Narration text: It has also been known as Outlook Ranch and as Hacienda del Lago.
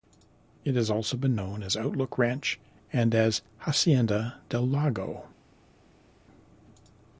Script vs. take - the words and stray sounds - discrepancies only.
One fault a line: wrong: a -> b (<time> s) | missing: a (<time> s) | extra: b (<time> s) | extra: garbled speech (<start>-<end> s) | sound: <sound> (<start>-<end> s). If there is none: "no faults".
no faults